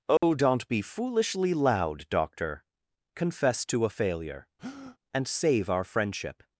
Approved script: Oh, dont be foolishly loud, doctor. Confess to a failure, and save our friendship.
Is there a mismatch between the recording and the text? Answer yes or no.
no